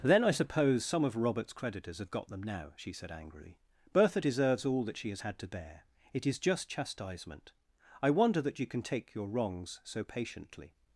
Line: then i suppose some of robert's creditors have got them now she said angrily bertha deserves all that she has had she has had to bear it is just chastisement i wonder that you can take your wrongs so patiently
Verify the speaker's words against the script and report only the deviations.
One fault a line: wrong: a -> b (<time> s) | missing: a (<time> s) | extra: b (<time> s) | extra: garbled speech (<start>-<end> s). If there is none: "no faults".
missing: she has had (5.4 s)